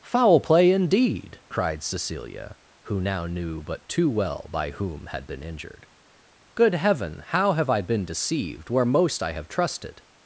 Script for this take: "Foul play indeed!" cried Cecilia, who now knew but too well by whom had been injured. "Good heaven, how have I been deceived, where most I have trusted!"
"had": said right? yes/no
yes